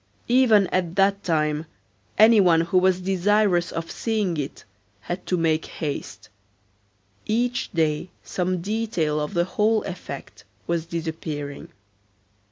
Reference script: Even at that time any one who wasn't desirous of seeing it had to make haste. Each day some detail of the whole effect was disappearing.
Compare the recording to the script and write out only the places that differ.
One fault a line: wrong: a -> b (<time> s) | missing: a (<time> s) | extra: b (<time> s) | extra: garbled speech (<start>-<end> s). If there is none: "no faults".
wrong: wasn't -> was (2.8 s)